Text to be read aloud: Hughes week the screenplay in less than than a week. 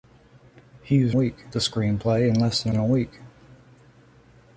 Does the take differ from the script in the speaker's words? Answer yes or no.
no